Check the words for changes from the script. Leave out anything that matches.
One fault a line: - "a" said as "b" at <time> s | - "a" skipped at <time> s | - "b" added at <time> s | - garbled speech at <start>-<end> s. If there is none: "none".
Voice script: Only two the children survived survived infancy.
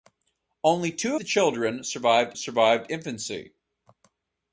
none